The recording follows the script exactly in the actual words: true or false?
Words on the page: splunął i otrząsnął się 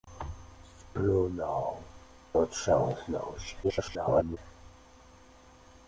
false